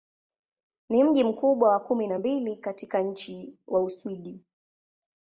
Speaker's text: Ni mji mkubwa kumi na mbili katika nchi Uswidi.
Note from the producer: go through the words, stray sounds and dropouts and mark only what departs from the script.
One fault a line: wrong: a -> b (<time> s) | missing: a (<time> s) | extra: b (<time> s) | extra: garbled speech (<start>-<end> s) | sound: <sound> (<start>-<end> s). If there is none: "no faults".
extra: wa (1.7 s)
extra: wa (3.7 s)